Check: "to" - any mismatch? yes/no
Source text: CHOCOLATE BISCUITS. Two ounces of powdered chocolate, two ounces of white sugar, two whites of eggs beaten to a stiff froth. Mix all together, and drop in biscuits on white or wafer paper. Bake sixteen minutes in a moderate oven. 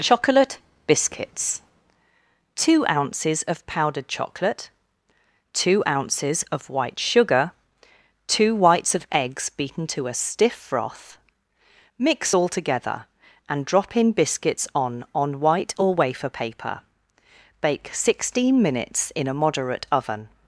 no